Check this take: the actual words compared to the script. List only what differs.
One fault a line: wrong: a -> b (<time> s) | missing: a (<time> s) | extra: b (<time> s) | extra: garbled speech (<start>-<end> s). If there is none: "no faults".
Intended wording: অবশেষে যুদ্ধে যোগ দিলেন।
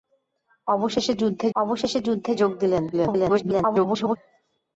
extra: অবশেষে যুদ্ধে (1.6 s)
extra: garbled speech (2.9-4.2 s)